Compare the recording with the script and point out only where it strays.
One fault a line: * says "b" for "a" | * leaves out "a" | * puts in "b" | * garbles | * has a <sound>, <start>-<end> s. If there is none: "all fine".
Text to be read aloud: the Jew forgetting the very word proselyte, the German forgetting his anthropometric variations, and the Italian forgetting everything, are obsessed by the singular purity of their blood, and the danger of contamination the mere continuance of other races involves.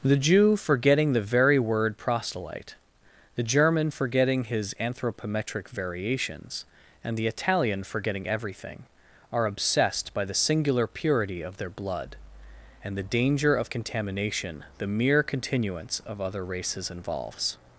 all fine